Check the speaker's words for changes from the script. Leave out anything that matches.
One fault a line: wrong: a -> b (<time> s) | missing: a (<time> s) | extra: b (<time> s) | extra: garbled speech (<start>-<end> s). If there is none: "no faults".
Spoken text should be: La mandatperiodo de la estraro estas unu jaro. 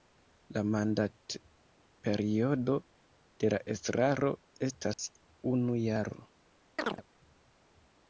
no faults